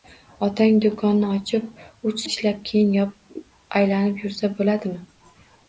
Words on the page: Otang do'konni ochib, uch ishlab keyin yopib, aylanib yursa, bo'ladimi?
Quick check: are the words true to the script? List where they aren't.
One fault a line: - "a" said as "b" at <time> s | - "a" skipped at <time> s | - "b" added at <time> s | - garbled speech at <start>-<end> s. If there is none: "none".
none